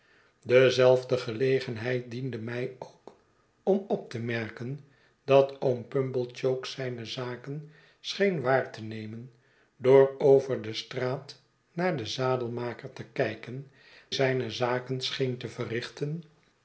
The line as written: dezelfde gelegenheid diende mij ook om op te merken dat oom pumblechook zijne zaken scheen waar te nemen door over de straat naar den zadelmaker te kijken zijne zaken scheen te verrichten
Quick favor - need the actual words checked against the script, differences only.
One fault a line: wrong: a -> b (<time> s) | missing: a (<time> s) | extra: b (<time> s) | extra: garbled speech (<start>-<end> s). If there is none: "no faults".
no faults